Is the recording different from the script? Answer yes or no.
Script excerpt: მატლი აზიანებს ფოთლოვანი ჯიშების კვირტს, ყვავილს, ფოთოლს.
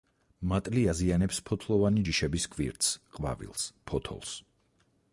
no